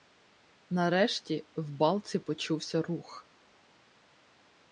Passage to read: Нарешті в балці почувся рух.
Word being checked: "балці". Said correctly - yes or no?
yes